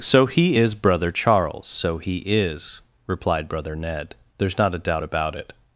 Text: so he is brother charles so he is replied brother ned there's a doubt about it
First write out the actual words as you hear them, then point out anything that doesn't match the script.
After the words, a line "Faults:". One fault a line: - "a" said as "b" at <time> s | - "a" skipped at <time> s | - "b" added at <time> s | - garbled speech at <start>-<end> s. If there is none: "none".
so he is brother charles so he is replied brother ned there's not a doubt about it
Faults:
- "not" added at 4.6 s